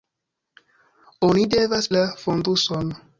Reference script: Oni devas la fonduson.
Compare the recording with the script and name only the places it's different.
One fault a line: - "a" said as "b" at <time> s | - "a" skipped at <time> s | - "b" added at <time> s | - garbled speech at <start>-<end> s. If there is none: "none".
none